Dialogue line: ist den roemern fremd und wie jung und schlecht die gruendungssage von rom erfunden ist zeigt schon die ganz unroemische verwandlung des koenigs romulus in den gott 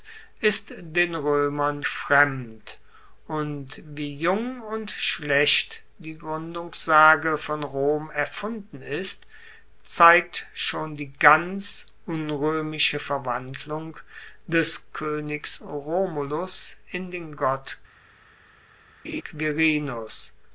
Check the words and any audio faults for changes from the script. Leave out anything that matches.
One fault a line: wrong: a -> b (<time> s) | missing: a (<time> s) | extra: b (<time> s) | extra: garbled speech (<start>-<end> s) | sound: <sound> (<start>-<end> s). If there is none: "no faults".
sound: laugh (19.0-19.2 s)